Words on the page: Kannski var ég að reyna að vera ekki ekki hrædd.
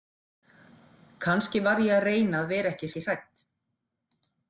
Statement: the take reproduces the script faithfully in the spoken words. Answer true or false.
true